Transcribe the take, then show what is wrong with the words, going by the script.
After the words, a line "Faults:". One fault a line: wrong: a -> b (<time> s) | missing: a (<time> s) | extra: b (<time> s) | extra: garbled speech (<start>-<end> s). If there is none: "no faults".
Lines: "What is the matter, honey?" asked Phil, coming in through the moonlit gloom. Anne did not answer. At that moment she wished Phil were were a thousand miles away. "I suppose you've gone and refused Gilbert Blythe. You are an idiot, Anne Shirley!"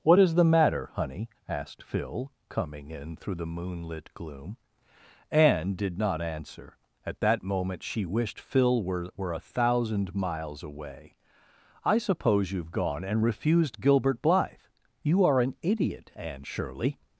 "What is the matter, honey?" asked Phil, coming in through the moonlit gloom. Anne did not answer. At that moment she wished Phil were were a thousand miles away. "I suppose you've gone and refused Gilbert Blythe. You are an idiot, Anne Shirley!"
Faults:
no faults